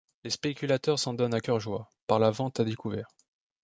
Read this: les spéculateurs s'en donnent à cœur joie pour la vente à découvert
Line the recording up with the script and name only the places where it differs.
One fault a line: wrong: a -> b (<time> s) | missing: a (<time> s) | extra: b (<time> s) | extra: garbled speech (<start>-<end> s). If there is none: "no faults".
wrong: pour -> par (2.1 s)